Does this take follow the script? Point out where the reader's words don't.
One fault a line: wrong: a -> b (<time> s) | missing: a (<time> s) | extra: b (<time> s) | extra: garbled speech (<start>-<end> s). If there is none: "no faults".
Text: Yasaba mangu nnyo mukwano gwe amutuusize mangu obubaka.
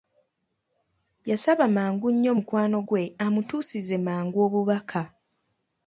no faults